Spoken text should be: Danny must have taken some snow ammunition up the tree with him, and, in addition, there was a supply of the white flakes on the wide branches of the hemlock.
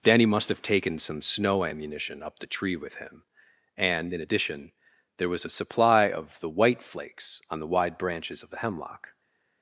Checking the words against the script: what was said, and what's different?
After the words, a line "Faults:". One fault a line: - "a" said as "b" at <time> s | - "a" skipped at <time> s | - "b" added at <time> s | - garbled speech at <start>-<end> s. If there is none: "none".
Danny must have taken some snow ammunition up the tree with him, and, in addition, there was a supply of the white flakes on the wide branches of the hemlock.
Faults:
none